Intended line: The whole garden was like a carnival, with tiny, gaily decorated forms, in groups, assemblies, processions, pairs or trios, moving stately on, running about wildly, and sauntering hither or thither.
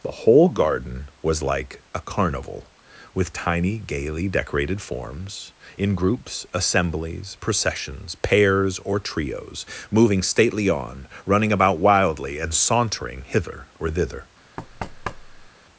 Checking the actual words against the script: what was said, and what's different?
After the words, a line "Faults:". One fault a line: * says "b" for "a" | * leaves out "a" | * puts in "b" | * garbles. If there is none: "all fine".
The whole garden was like a carnival, with tiny, gaily decorated forms, in groups, assemblies, processions, pairs or trios, moving stately on, running about wildly, and sauntering hither or thither.
Faults:
all fine